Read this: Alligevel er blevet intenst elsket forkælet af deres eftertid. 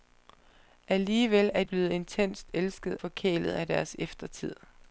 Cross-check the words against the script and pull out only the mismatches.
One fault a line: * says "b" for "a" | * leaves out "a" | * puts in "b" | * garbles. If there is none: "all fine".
all fine